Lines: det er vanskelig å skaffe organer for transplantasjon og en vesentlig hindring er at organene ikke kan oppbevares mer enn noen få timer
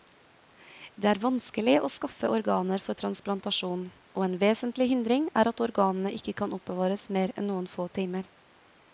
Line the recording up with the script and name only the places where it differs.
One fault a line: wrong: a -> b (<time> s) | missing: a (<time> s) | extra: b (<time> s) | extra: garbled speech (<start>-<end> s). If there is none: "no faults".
no faults